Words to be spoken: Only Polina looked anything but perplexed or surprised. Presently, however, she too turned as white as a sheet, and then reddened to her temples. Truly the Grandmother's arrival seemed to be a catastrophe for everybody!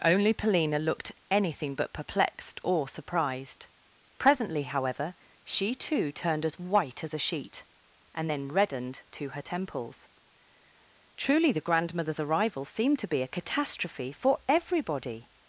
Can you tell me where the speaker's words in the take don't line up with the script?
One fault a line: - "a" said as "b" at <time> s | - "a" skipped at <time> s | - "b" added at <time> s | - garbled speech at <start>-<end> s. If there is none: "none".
none